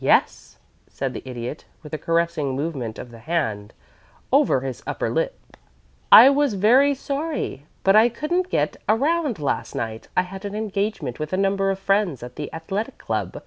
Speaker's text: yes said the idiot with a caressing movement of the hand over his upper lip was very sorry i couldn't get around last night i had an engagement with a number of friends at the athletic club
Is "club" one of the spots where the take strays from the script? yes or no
no